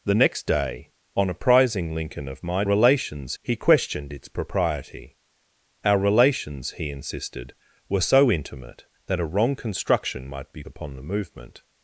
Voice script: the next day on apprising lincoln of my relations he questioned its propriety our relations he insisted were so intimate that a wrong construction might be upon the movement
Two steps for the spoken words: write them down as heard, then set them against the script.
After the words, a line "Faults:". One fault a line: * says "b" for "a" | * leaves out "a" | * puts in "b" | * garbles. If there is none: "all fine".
the next day on apprising lincoln of my relations he questioned its propriety our relations he insisted were so intimate that a wrong construction might be upon the movement
Faults:
all fine